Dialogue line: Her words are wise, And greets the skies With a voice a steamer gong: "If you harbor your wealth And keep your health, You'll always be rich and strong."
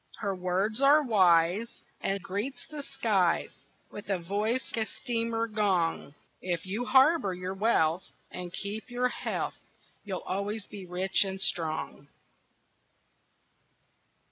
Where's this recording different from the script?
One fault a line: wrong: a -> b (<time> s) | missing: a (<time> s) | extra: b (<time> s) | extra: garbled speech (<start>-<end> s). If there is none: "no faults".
no faults